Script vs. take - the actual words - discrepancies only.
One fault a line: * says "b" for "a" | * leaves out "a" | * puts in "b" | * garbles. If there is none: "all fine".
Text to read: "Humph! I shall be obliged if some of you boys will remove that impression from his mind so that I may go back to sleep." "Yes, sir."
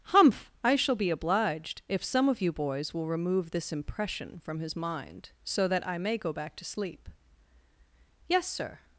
* says "this" for "that"